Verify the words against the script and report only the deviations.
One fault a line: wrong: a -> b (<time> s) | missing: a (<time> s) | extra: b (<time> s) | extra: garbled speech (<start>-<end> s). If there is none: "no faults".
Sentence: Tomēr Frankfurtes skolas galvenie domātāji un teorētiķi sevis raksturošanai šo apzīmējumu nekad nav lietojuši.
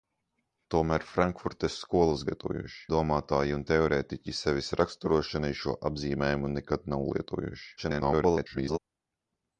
wrong: galvenie -> lietojuši (2.3 s)
extra: garbled speech (7.8-8.8 s)